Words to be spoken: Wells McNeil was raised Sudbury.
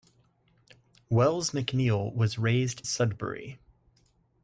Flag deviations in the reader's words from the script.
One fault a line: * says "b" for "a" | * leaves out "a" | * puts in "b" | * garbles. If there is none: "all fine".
all fine